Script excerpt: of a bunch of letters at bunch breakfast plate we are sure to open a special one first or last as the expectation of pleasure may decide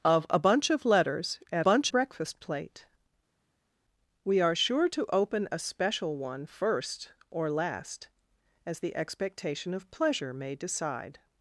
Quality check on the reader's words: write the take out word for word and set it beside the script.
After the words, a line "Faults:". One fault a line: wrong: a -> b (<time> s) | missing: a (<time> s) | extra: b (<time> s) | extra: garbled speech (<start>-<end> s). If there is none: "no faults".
of a bunch of letters at bunch breakfast plate we are sure to open a special one first or last as the expectation of pleasure may decide
Faults:
no faults